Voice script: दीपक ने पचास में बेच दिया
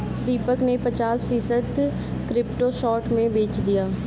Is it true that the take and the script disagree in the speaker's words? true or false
true